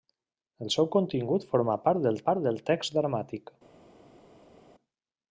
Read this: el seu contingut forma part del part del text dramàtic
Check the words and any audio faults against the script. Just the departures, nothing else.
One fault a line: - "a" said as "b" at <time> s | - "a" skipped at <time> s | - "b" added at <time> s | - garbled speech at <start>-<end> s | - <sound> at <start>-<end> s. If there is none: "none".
none